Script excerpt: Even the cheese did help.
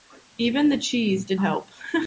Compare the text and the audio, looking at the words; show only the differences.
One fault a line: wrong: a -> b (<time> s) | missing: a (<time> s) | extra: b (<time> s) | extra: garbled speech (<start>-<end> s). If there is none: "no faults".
no faults